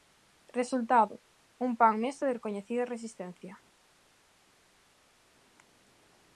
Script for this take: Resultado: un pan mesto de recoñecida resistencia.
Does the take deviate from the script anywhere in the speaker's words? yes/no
no